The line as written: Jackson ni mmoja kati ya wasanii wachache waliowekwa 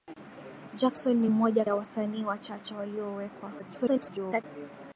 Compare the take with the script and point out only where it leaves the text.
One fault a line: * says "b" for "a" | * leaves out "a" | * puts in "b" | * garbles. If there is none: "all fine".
* leaves out "kati"
* garbles